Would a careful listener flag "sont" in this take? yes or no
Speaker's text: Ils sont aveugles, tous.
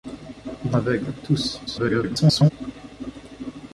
yes